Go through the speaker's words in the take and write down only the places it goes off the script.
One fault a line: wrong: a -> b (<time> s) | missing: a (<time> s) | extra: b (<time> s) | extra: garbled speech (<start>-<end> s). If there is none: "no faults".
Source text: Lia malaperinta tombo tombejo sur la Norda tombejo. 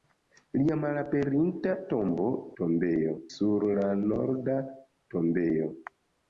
no faults